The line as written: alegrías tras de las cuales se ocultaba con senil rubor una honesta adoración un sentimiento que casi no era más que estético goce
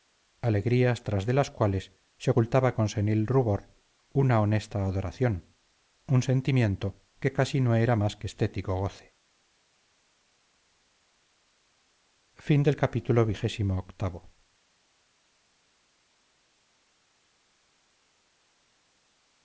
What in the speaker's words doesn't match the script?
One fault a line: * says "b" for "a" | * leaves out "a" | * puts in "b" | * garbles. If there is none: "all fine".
all fine